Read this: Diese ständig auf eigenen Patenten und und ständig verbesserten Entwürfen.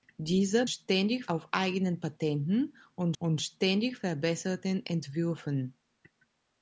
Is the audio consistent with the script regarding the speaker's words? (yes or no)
yes